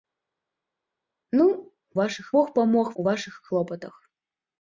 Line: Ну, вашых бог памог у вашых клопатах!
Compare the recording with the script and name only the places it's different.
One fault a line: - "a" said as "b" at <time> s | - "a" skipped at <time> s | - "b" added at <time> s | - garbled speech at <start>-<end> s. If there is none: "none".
none